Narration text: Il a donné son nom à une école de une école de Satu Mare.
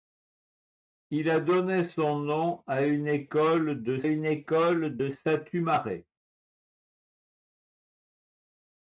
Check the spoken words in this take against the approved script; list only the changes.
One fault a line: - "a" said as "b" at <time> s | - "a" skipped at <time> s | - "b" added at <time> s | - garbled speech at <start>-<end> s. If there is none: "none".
none